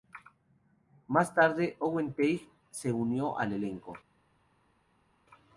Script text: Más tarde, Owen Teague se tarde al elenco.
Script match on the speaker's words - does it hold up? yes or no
no